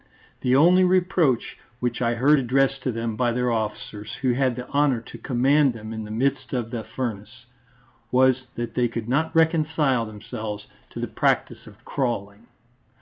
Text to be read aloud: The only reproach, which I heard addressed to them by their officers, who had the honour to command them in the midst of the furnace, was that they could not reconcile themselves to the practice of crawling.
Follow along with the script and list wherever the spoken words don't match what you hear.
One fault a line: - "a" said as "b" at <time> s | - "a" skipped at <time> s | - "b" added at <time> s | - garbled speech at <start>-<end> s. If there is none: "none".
none